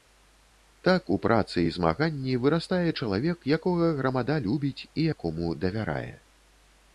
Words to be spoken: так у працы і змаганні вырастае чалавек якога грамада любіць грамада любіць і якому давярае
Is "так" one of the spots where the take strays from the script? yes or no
no